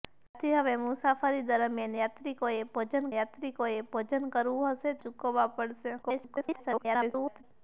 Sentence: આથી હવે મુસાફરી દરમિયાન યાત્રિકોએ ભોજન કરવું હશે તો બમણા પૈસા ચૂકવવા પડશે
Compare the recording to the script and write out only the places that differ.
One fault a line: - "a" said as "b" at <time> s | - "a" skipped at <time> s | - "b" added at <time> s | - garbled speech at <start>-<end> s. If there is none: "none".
- "યાત્રિકોએ ભોજન" added at 3.1 s
- "તો બમણા પૈસા" skipped at 5.0 s
- garbled speech at 6.0-7.4 s